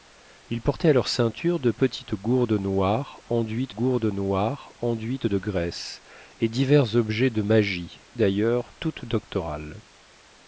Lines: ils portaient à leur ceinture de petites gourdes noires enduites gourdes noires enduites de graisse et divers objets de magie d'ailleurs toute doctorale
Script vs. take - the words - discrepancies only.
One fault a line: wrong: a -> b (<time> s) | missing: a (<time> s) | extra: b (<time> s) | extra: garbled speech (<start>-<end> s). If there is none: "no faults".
no faults